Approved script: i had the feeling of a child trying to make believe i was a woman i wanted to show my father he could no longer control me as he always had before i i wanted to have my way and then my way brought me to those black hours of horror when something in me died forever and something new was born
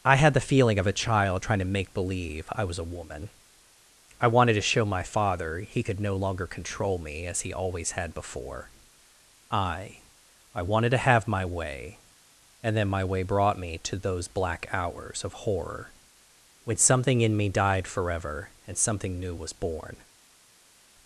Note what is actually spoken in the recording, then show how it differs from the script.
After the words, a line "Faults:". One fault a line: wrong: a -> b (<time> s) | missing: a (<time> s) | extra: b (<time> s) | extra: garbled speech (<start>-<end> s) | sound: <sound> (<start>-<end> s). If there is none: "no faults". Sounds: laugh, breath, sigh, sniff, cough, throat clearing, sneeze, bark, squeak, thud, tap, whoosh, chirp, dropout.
i had the feeling of a child trying to make believe i was a woman i wanted to show my father he could no longer control me as he always had before i i wanted to have my way and then my way brought me to those black hours of horror when something in me died forever and something new was born
Faults:
no faults